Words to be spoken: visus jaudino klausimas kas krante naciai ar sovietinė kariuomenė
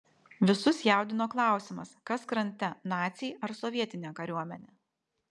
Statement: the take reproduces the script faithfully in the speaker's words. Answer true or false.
true